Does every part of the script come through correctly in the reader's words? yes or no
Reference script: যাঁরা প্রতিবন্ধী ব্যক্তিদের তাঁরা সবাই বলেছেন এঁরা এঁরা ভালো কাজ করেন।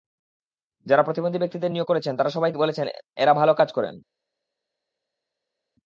no